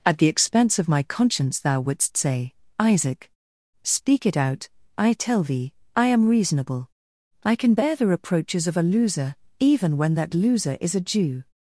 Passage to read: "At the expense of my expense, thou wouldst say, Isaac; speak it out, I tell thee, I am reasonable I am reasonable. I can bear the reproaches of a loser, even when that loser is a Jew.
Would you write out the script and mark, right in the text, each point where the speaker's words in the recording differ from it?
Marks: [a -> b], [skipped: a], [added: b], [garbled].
"At the expense of my [expense, -> conscience] thou wouldst say, Isaac; speak it out, I tell thee, I am reasonable I [skipped: am reasonable. I] can bear the reproaches of a loser, even when that loser is a Jew.